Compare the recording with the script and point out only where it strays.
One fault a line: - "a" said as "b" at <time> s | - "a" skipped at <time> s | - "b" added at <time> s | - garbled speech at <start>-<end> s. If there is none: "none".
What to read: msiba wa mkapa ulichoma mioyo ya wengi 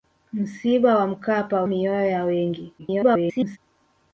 - "ulichoma" skipped at 1.6 s
- garbled speech at 2.8-3.6 s